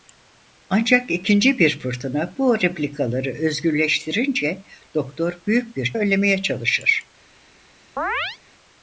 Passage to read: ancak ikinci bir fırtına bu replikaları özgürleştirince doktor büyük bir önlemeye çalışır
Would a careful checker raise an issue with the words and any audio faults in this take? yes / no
yes